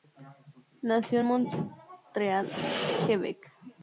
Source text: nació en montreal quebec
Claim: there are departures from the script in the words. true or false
false